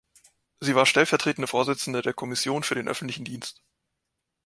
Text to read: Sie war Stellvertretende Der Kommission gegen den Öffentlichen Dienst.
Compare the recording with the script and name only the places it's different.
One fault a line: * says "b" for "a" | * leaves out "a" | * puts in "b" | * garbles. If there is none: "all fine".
* puts in "Vorsitzende"
* says "für" for "gegen"